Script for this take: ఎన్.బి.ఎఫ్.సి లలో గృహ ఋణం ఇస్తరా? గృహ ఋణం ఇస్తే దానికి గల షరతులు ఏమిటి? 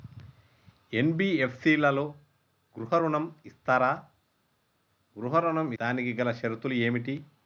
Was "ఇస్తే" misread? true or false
true